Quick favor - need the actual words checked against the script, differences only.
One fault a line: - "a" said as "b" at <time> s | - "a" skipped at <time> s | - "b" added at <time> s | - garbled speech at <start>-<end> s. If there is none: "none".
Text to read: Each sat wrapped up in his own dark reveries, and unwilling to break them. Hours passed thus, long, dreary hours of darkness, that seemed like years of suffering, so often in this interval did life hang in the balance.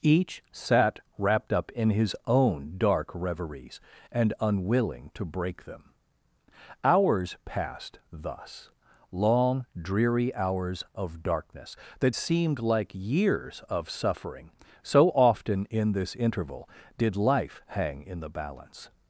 none